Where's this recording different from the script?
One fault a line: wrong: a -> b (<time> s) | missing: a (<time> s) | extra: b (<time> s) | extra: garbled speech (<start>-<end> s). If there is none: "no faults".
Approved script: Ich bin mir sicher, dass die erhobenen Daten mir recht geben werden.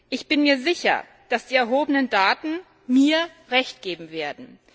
no faults